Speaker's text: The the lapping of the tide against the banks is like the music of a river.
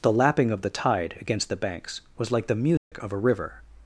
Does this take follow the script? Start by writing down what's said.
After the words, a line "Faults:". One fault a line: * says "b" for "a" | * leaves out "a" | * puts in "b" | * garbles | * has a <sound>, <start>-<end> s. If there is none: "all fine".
The lapping of the tide against the banks was like the music of a river.
Faults:
* leaves out "the"
* says "was" for "is"
* has a dropout, 2.8-2.9 s